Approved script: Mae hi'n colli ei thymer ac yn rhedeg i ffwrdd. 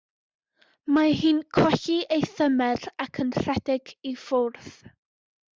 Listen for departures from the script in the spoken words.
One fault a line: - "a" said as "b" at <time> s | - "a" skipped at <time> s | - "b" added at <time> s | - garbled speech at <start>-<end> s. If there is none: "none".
none